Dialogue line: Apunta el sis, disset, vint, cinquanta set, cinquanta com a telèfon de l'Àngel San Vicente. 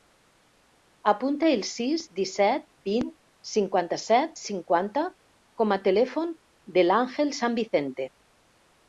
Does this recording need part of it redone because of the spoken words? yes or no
no